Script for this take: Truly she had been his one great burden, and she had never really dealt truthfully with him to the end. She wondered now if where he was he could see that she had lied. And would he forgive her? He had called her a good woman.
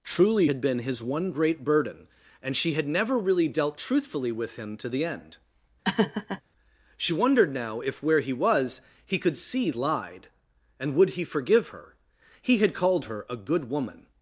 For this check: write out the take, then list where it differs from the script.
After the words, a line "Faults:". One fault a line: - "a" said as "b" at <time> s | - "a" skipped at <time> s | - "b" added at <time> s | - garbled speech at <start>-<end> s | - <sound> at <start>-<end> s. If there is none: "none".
Truly had been his one great burden, and she had never really dealt truthfully with him to the end. She wondered now if where he was he could see lied. And would he forgive her? He had called her a good woman.
Faults:
- "she" skipped at 0.5 s
- laugh at 5.8-6.4 s
- "that she had" skipped at 9.7 s